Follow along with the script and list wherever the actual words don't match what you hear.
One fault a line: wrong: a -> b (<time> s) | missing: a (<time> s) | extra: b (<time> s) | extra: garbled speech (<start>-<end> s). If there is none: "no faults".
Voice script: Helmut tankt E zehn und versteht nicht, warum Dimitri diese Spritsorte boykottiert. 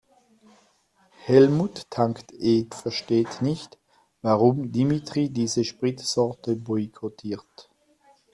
missing: zehn und (2.6 s)